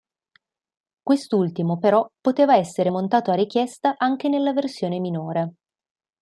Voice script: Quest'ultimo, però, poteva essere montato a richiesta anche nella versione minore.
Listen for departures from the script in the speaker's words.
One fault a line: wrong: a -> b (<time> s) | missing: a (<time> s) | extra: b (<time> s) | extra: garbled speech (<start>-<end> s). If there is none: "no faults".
no faults